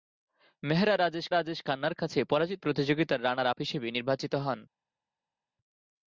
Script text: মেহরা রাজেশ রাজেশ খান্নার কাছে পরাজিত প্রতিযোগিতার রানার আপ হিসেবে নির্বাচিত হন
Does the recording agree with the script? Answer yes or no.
yes